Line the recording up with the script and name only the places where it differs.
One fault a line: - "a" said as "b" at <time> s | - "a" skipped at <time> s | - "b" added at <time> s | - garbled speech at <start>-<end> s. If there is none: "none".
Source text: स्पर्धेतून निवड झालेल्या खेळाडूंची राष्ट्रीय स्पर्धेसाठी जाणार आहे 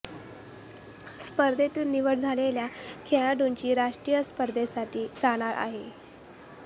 none